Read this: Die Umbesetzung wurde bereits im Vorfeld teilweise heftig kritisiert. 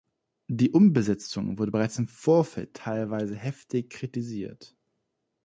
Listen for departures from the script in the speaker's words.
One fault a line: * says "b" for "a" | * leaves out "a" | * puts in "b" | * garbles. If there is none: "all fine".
all fine